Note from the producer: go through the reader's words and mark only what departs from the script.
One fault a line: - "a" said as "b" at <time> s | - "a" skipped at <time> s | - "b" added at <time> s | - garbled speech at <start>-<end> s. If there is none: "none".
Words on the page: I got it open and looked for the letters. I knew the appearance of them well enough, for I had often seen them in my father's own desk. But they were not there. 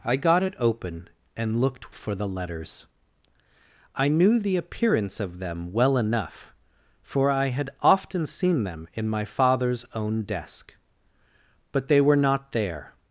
none